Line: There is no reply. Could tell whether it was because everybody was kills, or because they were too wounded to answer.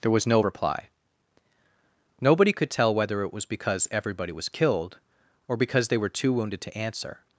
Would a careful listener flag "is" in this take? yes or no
yes